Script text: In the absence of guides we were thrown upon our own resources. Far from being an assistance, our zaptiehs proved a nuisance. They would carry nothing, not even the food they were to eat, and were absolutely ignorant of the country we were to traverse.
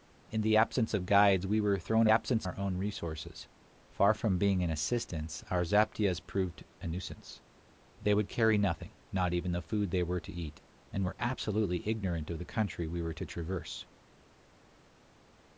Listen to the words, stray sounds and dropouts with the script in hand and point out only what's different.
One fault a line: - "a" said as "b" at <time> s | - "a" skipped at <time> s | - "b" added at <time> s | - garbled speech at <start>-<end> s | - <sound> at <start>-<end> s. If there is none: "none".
- "upon" said as "absence" at 2.1 s